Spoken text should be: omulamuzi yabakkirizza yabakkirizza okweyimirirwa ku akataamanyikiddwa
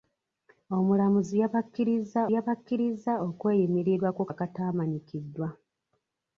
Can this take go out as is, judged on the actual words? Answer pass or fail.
pass